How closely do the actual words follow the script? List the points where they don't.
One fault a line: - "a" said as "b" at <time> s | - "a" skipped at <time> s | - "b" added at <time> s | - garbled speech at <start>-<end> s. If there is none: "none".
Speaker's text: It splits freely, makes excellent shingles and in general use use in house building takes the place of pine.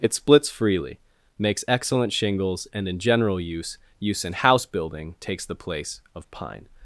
none